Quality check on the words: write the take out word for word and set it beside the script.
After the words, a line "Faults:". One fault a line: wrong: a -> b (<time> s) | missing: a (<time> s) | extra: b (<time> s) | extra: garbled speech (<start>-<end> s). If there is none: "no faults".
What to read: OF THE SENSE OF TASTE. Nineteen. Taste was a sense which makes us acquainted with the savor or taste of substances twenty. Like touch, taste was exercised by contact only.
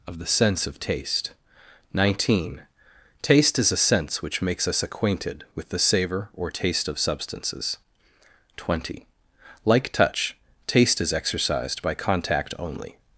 OF THE SENSE OF TASTE. Nineteen. Taste is a sense which makes us acquainted with the savor or taste of substances twenty. Like touch, taste is exercised by contact only.
Faults:
wrong: was -> is (3.6 s)
wrong: was -> is (11.0 s)